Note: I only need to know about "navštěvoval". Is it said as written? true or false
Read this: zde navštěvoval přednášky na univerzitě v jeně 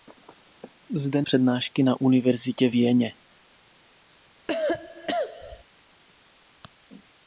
false